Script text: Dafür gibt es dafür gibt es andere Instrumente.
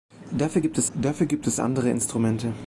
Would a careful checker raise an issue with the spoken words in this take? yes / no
no